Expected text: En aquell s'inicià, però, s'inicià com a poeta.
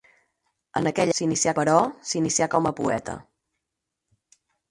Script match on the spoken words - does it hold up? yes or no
yes